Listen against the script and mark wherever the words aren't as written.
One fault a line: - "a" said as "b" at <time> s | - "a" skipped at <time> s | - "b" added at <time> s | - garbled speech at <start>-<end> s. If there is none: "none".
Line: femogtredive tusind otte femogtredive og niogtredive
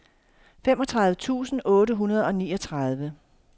- "femogtredive" said as "hundrede" at 1.9 s